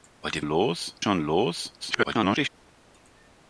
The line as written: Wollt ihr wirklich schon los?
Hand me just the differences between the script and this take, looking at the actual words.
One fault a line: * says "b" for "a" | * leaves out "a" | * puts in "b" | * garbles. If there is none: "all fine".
* says "los" for "wirklich"
* garbles